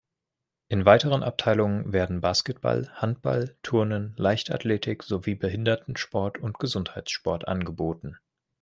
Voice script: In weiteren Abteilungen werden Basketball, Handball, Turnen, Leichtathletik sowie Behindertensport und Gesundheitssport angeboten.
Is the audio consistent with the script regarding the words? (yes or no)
yes